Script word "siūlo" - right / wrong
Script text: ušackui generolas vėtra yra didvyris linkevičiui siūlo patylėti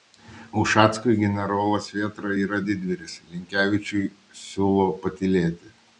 right